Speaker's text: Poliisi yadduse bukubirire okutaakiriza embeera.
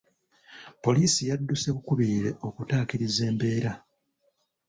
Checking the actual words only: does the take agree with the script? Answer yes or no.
yes